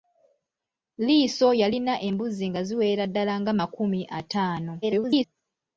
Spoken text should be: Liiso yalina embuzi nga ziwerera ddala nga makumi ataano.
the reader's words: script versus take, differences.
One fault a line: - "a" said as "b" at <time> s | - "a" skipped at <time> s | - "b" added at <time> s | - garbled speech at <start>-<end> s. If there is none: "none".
- garbled speech at 4.8-5.2 s